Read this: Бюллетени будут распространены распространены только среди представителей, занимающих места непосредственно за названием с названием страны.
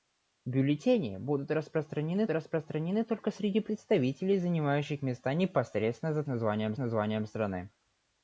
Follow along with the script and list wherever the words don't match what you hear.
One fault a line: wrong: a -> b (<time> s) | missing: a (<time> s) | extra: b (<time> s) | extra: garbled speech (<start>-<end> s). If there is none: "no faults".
no faults